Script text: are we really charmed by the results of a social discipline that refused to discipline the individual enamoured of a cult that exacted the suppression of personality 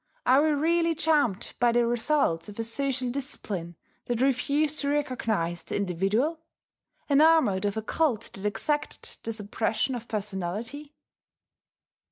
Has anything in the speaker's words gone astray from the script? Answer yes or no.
yes